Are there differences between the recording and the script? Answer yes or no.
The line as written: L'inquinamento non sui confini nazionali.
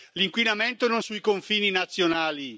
no